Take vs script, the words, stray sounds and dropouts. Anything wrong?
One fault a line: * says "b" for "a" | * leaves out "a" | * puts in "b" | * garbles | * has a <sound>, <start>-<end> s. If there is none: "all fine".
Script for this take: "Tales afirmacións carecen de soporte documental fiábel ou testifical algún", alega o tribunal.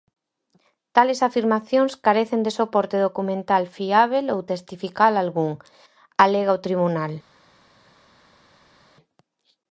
all fine